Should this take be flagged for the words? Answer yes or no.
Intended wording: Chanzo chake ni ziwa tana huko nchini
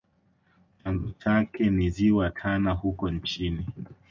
no